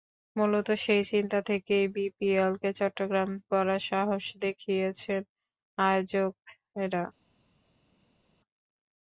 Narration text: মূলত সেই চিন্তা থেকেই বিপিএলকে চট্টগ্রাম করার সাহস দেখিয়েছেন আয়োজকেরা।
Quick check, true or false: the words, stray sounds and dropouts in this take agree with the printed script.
true